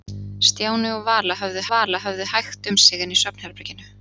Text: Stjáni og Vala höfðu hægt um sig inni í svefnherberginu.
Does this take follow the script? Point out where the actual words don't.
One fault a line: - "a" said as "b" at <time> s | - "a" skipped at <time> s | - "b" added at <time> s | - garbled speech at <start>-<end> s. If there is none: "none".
- "Vala höfðu" added at 1.7 s